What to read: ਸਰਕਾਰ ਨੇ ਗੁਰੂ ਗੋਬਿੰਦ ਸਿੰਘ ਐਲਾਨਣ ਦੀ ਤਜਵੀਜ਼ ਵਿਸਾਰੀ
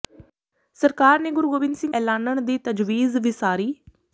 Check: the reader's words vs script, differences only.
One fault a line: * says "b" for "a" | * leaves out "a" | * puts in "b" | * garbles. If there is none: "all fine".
all fine